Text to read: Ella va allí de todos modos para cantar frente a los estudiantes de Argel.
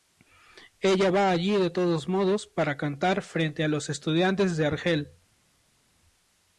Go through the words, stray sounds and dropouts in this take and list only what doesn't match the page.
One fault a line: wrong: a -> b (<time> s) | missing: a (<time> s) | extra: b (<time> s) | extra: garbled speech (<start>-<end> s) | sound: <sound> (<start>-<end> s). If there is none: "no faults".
no faults